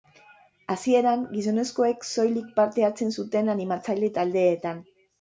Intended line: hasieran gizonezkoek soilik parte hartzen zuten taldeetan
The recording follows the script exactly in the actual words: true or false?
false